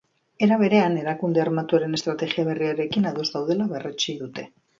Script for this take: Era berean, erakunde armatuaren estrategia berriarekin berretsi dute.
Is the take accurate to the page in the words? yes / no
no